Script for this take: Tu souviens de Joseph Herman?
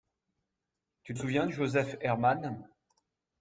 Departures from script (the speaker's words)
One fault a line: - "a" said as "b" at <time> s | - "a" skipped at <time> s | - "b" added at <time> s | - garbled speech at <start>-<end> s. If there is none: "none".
none